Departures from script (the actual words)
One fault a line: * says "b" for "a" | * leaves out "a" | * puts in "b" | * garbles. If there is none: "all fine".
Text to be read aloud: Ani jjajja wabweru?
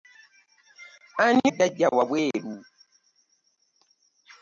all fine